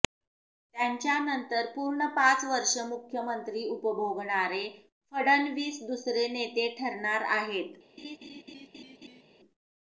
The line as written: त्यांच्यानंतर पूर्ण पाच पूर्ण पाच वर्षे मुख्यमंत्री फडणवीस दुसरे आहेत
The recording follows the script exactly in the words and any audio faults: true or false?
false